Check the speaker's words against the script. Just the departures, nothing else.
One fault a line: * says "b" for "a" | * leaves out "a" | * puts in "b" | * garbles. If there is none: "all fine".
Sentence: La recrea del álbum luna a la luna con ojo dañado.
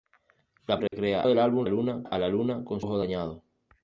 all fine